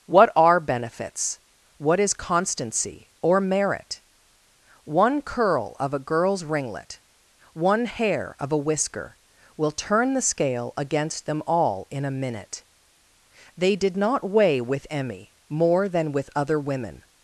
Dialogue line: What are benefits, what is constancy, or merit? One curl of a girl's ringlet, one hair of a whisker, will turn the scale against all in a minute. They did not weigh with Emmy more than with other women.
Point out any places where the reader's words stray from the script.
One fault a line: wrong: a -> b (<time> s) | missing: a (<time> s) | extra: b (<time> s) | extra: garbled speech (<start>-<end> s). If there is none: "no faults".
extra: them (11.3 s)